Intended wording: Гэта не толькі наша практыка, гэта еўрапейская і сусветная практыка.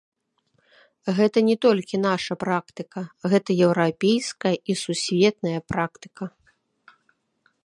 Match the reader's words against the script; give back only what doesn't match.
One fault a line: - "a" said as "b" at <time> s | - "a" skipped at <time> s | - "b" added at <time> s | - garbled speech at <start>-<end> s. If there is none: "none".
none